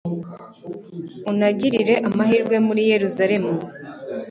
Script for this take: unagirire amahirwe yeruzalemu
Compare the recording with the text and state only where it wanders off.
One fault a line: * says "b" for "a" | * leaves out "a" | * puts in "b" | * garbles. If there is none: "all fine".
* puts in "muri"